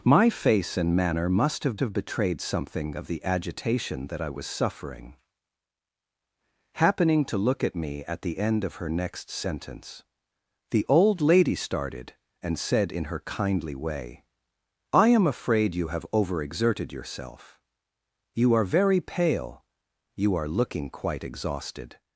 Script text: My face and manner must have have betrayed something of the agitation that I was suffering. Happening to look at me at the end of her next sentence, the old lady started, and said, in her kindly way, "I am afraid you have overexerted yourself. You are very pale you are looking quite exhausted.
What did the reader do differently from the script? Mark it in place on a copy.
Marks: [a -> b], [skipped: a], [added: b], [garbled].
My face and manner must have have betrayed something of the agitation that I was suffering. Happening to look at me at the end of her next sentence, the old lady started, and said, in her kindly way, "I am afraid you have overexerted yourself. You are very pale you are looking quite exhausted.